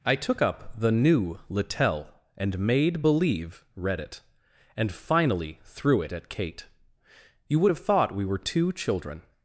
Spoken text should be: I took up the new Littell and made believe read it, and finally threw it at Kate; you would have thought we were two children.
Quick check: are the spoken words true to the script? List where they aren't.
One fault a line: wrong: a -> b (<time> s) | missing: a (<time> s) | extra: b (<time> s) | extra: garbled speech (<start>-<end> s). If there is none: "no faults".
no faults